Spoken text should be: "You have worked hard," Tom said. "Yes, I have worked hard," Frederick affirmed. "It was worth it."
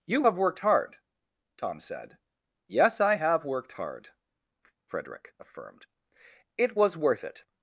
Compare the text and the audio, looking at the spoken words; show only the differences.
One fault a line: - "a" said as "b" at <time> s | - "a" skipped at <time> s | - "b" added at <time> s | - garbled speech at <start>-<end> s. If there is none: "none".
none